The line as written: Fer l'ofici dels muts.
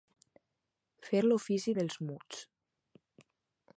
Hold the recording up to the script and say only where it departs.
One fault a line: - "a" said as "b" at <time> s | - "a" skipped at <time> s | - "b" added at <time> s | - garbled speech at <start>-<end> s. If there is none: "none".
none